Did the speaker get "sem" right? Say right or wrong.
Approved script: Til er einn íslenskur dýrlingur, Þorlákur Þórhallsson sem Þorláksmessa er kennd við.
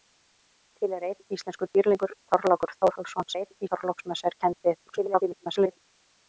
wrong